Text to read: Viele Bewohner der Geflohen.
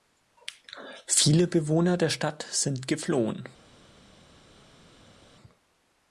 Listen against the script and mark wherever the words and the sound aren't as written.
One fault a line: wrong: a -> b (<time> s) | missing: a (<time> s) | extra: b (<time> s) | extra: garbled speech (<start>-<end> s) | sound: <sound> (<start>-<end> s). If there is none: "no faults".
extra: Stadt sind (2.1 s)